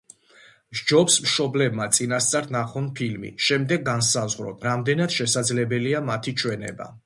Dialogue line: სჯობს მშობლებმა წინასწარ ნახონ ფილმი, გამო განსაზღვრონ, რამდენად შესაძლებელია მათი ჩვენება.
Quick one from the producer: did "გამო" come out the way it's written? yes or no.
no